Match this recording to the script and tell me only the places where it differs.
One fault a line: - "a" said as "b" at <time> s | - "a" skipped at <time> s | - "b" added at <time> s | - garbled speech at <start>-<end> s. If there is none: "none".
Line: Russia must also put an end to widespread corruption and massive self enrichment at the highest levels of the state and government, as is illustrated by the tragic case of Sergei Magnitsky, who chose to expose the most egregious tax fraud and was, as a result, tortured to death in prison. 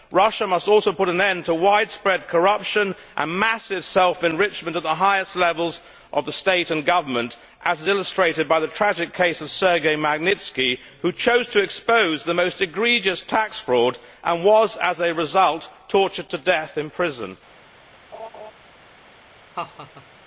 none